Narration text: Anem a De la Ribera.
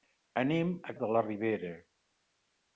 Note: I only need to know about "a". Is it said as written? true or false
true